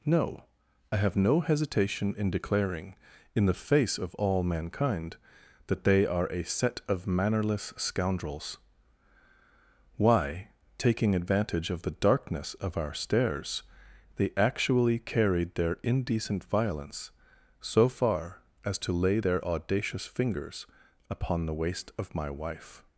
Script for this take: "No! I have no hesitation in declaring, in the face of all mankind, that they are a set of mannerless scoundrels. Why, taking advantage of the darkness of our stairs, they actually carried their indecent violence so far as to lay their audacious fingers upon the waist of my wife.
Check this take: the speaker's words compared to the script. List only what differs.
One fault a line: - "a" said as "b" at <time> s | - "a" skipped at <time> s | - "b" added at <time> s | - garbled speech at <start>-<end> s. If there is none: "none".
none